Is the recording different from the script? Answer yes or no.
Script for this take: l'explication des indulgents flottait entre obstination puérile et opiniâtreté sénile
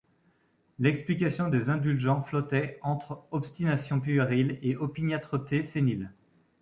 no